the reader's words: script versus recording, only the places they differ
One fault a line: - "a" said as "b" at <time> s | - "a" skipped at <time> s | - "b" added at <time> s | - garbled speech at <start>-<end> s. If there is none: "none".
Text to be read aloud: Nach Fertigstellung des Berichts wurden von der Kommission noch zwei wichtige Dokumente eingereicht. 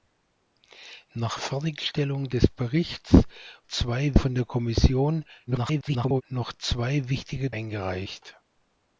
- "wurden" said as "zwei" at 3.6 s
- garbled speech at 5.5-6.2 s
- "Dokumente" skipped at 7.5 s